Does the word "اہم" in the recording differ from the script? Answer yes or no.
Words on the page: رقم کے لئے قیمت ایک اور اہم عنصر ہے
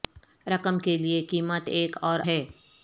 yes